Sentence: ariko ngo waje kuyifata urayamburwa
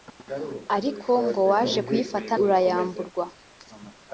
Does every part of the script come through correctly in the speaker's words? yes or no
yes